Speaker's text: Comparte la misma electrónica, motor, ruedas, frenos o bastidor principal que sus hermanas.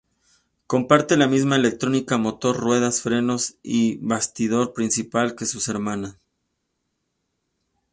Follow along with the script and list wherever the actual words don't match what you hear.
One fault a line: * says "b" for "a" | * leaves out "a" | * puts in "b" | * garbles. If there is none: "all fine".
* says "y" for "o"